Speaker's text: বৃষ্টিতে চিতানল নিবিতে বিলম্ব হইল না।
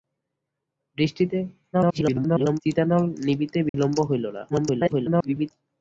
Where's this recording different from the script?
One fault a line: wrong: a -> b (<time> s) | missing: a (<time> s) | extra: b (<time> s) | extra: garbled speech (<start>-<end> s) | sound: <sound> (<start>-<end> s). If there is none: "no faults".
extra: garbled speech (1.7-2.6 s)
sound: dropout (3.7-3.7 s)
extra: garbled speech (4.5-5.5 s)